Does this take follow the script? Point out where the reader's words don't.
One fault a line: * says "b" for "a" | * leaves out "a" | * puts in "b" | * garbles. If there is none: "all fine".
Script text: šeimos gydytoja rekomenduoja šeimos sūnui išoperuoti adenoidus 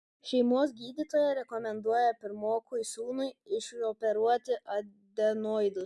* says "pirmokui" for "šeimos"